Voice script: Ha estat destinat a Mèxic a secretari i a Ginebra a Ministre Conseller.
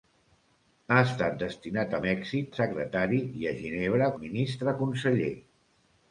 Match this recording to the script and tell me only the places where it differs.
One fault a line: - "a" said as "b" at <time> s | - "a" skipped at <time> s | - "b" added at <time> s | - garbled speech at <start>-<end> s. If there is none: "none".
none